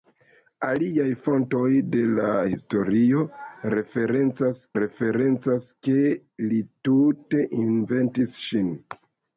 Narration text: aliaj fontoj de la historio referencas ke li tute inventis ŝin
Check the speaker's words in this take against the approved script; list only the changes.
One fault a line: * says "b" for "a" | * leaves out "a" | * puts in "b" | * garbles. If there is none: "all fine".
* puts in "referencas"